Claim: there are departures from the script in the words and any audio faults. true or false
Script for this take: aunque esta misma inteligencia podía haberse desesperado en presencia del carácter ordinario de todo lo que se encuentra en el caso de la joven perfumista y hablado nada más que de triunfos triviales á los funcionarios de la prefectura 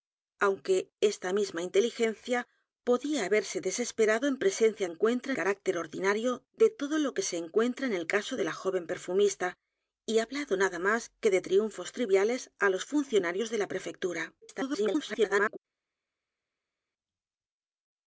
true